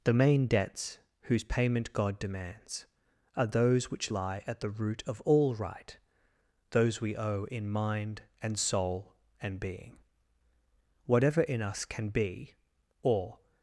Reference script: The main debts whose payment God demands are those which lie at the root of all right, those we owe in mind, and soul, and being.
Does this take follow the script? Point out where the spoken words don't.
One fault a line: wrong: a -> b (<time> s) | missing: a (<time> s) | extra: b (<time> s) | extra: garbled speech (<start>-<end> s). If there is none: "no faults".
extra: Whatever in us can be or (11.0 s)